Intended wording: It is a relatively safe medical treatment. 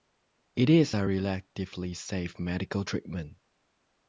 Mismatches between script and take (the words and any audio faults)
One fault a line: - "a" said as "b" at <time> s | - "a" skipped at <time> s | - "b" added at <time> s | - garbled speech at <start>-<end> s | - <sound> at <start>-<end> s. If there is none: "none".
none